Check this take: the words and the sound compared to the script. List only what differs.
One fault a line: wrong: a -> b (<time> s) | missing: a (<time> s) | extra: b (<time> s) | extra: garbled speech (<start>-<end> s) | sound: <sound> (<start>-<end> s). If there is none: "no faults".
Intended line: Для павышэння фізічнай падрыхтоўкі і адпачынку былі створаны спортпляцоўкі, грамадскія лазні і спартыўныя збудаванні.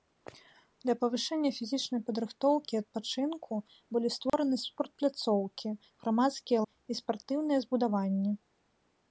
sound: dropout (4.3-4.3 s)
missing: лазні (6.6 s)